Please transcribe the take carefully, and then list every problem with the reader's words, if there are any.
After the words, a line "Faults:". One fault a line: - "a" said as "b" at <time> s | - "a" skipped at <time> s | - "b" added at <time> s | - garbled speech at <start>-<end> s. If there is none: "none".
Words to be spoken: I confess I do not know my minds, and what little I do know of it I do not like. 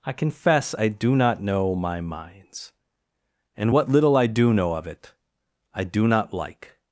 I confess I do not know my minds, and what little I do know of it I do not like.
Faults:
none